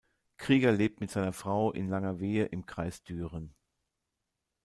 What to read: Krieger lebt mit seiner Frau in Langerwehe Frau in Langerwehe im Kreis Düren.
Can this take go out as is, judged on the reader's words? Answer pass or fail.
fail